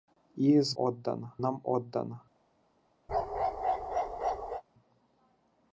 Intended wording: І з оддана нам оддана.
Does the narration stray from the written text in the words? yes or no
no